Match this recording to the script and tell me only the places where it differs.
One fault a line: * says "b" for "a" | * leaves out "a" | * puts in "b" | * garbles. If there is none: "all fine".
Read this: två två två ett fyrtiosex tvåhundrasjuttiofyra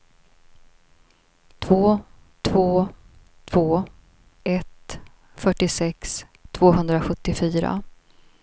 all fine